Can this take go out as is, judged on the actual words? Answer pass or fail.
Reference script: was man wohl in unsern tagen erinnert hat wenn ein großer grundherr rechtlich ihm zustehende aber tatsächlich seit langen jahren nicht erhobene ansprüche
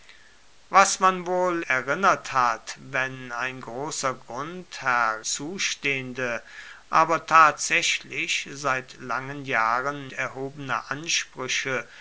fail